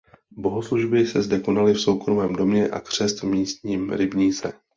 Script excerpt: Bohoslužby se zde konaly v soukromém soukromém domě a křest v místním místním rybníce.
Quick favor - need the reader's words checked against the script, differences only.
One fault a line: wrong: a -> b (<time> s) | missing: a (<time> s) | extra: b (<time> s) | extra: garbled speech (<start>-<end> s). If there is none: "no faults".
missing: soukromém (2.4 s)
missing: místním (3.9 s)